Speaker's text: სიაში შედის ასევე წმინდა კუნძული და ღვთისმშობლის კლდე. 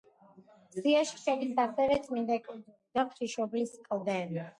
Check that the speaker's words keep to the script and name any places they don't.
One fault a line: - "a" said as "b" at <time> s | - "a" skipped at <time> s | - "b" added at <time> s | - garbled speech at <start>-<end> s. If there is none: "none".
none